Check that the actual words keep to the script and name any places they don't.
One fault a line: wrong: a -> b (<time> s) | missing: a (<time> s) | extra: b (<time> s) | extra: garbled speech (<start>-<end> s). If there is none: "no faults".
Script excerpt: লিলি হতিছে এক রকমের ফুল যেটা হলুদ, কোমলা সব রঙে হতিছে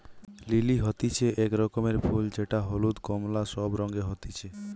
no faults